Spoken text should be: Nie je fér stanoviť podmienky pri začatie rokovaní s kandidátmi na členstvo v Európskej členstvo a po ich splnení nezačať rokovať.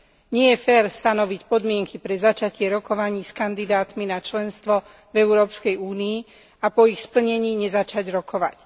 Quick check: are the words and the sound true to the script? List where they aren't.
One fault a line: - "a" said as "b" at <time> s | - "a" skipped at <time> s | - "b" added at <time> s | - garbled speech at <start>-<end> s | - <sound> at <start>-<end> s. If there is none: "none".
- "pri" said as "pre" at 2.0 s
- "členstvo" said as "únii" at 5.8 s